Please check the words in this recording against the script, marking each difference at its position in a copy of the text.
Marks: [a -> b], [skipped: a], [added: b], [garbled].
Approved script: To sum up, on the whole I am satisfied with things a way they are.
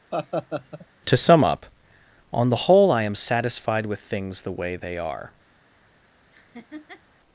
To sum up, on the whole I am satisfied with things [a -> the] way they are.